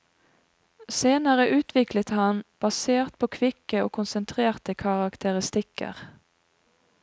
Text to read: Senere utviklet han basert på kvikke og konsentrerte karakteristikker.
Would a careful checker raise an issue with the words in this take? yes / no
no